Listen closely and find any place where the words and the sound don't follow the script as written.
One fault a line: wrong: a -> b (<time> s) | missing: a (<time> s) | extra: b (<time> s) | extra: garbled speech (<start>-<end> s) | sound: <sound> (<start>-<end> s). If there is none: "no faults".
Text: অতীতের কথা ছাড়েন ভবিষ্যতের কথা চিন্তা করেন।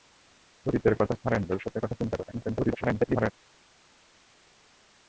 extra: garbled speech (2.3-3.3 s)